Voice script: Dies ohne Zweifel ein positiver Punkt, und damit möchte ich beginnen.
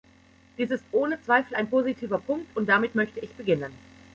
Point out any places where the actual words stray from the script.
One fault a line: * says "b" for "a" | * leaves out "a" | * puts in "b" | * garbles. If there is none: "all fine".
* puts in "ist"